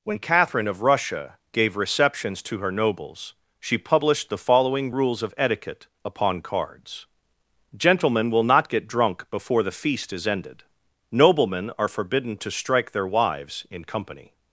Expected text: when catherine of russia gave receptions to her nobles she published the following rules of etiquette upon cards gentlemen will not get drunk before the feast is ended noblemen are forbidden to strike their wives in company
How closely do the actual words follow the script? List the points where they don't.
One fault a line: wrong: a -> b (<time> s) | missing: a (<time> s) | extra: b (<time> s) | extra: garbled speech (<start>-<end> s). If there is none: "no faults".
no faults